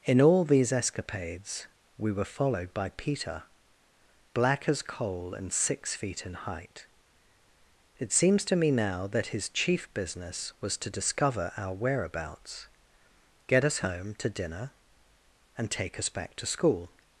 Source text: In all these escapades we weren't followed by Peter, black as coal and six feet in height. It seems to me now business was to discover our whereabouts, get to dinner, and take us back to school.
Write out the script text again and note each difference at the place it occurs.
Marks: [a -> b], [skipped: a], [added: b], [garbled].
In all these escapades we [weren't -> were] followed by Peter, black as coal and six feet in height. It seems to me now [added: that his chief] business was to discover our whereabouts, get [added: us home] to dinner, and take us back to school.